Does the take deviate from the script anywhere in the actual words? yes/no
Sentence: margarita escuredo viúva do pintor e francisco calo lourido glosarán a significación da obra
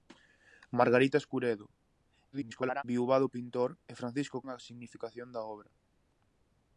yes